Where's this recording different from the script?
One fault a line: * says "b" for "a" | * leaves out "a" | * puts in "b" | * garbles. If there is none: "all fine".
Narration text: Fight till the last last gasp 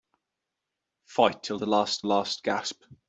all fine